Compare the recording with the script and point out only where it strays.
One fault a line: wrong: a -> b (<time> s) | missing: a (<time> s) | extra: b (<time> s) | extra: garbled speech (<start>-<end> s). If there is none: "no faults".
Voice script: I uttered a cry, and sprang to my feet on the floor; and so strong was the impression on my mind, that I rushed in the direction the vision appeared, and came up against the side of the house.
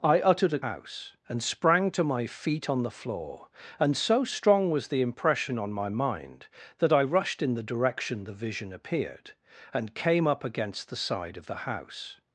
wrong: cry -> house (0.6 s)